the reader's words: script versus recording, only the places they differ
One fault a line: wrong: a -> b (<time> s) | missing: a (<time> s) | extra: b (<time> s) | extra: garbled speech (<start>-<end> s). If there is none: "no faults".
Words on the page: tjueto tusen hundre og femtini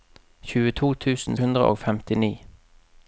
no faults